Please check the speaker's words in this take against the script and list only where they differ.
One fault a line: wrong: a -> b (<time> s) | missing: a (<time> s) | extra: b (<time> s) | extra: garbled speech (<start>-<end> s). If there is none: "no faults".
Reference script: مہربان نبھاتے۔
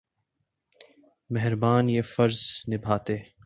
extra: یہ فرض (1.9 s)